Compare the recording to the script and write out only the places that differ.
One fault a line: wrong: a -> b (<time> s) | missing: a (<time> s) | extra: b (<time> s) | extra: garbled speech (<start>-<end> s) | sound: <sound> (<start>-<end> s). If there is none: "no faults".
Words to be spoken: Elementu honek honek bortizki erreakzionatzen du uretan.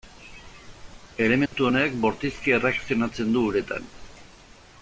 sound: dropout (1.5-1.5 s)
missing: honek (2.0 s)